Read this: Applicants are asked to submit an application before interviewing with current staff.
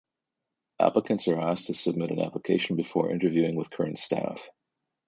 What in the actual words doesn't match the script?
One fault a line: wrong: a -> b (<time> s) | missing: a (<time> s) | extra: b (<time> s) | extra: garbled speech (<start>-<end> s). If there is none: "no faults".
no faults